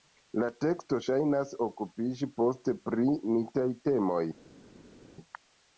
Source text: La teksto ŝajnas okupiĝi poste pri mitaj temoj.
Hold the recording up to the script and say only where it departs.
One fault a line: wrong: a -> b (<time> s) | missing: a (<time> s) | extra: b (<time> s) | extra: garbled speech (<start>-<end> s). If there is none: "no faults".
no faults